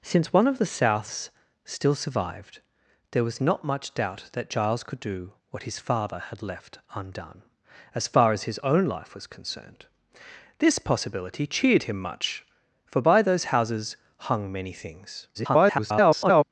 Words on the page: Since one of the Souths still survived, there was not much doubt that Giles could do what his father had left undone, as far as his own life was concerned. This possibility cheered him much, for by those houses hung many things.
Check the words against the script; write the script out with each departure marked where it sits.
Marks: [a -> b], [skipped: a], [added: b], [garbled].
Since one of the Souths still survived, there was not much doubt that Giles could do what his father had left undone, as far as his own life was concerned. This possibility cheered him much, for by those houses hung many things. [garbled]